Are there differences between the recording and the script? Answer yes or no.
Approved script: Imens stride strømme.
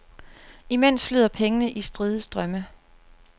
yes